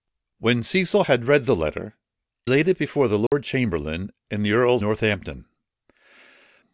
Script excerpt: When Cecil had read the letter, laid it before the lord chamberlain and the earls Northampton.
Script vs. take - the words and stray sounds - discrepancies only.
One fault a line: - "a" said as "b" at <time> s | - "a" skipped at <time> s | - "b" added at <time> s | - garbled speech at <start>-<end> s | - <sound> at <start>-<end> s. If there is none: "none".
- dropout at 3.3-3.3 s